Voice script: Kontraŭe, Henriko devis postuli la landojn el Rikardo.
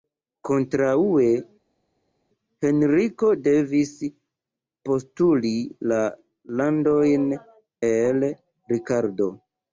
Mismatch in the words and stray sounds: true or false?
false